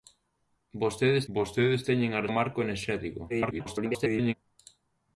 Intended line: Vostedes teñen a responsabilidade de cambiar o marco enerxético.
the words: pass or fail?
fail